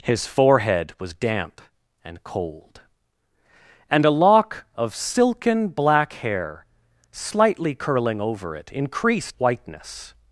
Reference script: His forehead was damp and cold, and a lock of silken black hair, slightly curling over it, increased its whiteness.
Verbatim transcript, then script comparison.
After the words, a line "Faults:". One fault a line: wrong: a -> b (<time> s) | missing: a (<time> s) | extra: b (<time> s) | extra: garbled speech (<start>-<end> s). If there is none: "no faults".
His forehead was damp and cold, and a lock of silken black hair, slightly curling over it, increased whiteness.
Faults:
missing: its (9.4 s)